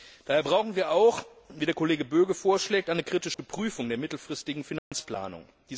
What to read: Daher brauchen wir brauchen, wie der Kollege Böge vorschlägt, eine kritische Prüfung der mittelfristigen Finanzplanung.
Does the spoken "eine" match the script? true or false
true